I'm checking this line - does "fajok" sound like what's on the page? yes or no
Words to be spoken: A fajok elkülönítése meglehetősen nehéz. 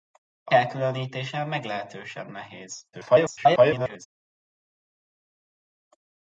no